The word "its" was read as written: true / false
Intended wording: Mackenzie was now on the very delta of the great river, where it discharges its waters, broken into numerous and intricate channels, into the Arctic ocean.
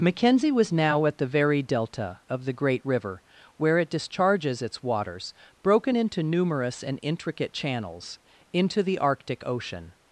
true